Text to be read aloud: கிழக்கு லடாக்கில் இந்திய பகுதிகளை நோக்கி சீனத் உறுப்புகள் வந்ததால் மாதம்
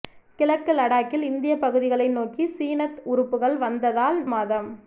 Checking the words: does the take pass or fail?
pass